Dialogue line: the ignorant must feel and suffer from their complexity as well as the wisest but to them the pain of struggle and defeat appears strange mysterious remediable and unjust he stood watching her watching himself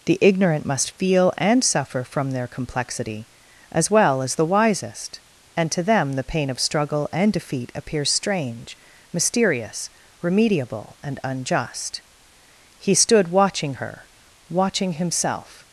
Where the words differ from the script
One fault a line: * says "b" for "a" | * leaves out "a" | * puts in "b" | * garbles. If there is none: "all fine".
* says "and" for "but"